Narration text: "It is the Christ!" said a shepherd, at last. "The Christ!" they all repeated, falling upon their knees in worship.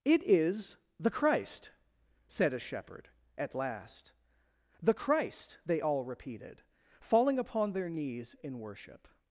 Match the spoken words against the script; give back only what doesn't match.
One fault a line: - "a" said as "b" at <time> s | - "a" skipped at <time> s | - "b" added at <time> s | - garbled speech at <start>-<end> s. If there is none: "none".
none